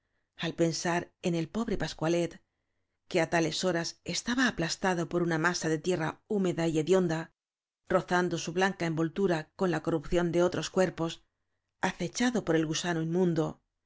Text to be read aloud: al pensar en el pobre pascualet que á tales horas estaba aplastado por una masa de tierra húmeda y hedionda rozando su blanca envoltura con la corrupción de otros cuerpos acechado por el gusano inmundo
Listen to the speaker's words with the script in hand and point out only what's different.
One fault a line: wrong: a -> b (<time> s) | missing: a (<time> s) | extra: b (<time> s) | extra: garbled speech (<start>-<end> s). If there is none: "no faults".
no faults